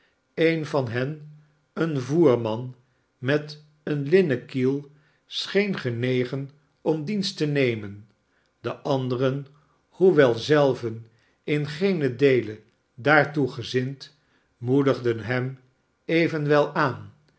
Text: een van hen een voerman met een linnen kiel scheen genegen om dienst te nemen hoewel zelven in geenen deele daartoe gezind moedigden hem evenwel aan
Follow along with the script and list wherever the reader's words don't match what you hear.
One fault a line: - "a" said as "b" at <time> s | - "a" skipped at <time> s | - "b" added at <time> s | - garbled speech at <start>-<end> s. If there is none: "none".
- "de anderen" added at 8.6 s